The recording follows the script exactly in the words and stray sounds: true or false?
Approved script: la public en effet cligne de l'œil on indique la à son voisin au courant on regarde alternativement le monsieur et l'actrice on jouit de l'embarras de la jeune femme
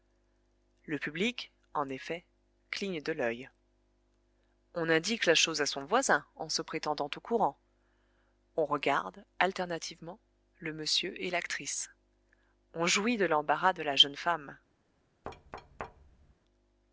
false